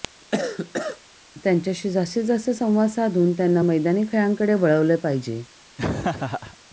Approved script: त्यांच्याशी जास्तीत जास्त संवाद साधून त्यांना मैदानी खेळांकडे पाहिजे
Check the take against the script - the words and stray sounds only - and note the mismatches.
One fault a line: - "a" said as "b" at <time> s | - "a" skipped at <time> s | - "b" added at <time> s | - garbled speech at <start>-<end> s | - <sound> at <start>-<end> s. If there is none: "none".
- cough at 0.3-1.0 s
- "वळवले" added at 4.5 s
- laugh at 5.8-6.6 s